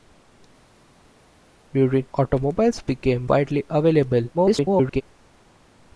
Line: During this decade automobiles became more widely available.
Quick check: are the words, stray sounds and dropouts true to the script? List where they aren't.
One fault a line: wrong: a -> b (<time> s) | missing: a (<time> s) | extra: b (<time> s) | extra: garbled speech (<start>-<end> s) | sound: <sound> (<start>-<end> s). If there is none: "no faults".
missing: this decade (2.1 s)
missing: more (3.3 s)
extra: garbled speech (4.3-5.0 s)